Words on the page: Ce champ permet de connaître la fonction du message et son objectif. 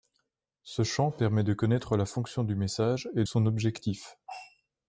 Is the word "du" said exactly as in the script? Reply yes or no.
yes